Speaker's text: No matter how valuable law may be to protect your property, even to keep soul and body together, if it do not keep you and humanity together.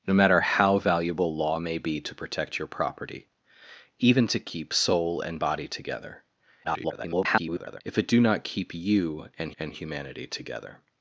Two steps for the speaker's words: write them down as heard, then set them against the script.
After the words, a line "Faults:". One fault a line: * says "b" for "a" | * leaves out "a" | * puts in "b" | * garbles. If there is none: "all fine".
No matter how valuable law may be to protect your property, even to keep soul and body together, [garbled] if it do not keep you and and humanity together.
Faults:
* garbles
* puts in "and"